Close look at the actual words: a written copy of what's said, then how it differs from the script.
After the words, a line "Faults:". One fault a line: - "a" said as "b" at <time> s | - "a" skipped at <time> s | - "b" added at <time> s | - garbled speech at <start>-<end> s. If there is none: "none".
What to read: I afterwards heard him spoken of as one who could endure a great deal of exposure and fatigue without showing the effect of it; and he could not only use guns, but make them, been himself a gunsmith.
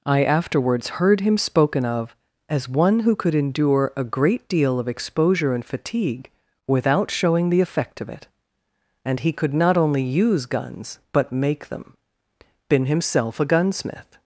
I afterwards heard him spoken of as one who could endure a great deal of exposure and fatigue without showing the effect of it; and he could not only use guns, but make them, been himself a gunsmith.
Faults:
none